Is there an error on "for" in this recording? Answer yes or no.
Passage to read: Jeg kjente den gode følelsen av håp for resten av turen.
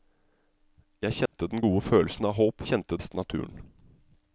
yes